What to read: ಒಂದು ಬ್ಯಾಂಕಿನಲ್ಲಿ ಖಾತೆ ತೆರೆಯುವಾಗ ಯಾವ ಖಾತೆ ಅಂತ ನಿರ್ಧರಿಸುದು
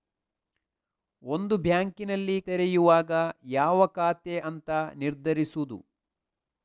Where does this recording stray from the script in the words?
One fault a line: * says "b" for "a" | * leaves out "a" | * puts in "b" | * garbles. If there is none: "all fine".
* leaves out "ಖಾತೆ"